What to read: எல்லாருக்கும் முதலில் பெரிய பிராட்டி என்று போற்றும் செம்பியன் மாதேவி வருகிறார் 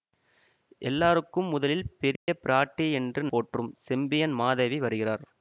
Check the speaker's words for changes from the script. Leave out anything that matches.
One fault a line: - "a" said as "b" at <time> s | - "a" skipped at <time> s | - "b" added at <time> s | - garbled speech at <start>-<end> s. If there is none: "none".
none